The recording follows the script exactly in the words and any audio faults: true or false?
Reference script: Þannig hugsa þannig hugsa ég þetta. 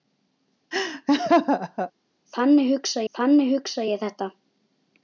false